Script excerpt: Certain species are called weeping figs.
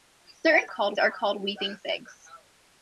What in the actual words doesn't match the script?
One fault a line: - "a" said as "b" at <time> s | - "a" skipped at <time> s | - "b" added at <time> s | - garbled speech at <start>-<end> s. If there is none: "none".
- "species" said as "called" at 0.7 s